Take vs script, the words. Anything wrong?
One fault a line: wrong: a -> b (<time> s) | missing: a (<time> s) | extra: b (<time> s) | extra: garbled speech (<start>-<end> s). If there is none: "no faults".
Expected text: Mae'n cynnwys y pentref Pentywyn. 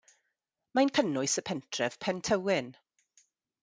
no faults